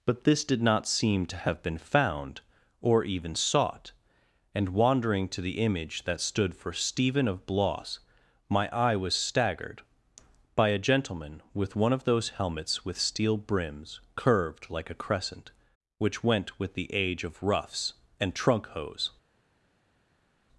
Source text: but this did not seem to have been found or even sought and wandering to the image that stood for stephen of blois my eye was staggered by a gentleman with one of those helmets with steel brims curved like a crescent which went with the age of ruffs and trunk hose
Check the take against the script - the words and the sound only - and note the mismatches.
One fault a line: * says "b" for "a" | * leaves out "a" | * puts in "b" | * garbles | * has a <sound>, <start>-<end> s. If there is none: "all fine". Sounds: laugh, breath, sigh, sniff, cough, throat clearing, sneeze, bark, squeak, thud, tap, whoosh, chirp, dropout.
all fine